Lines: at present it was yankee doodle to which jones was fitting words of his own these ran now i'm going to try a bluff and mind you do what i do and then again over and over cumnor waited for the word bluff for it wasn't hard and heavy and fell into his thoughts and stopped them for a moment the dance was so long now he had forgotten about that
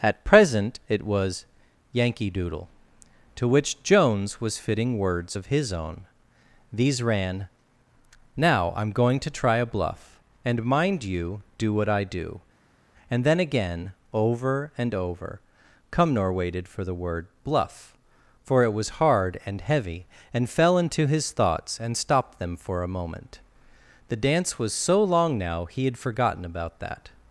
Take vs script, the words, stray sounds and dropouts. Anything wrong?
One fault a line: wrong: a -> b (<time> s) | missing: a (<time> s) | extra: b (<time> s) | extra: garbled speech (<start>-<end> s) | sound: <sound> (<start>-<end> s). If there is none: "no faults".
wrong: wasn't -> was (18.7 s)